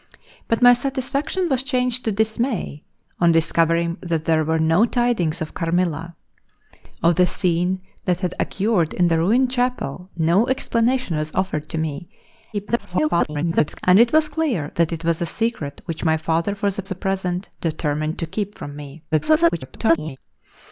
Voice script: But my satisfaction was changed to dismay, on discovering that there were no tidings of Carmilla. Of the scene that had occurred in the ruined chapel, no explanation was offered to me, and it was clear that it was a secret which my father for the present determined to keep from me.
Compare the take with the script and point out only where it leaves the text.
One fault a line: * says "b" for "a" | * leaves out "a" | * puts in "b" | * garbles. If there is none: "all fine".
* garbles
* puts in "the"
* garbles